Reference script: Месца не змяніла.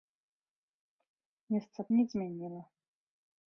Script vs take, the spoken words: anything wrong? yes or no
no